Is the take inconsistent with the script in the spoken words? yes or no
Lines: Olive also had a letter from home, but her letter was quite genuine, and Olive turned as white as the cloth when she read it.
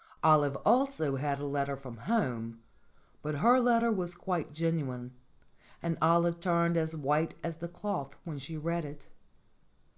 no